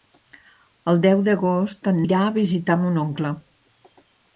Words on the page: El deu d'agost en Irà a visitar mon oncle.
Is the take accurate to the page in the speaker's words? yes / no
yes